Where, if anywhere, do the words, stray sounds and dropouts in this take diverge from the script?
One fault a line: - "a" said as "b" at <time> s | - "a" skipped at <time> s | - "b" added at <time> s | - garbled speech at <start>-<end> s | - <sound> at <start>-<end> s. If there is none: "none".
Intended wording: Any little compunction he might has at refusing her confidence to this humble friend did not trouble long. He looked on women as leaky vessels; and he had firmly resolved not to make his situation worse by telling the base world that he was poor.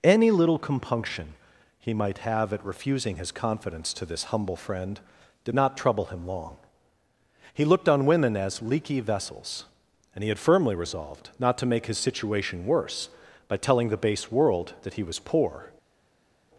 - "has" said as "have" at 2.2 s
- "her" said as "his" at 3.2 s
- "him" added at 6.1 s